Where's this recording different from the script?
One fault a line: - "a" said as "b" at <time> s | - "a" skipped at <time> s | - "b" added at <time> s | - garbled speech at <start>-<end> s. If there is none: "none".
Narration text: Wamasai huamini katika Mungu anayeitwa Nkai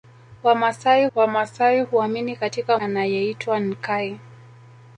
- "wamasai" added at 1.1 s
- "Mungu" skipped at 2.8 s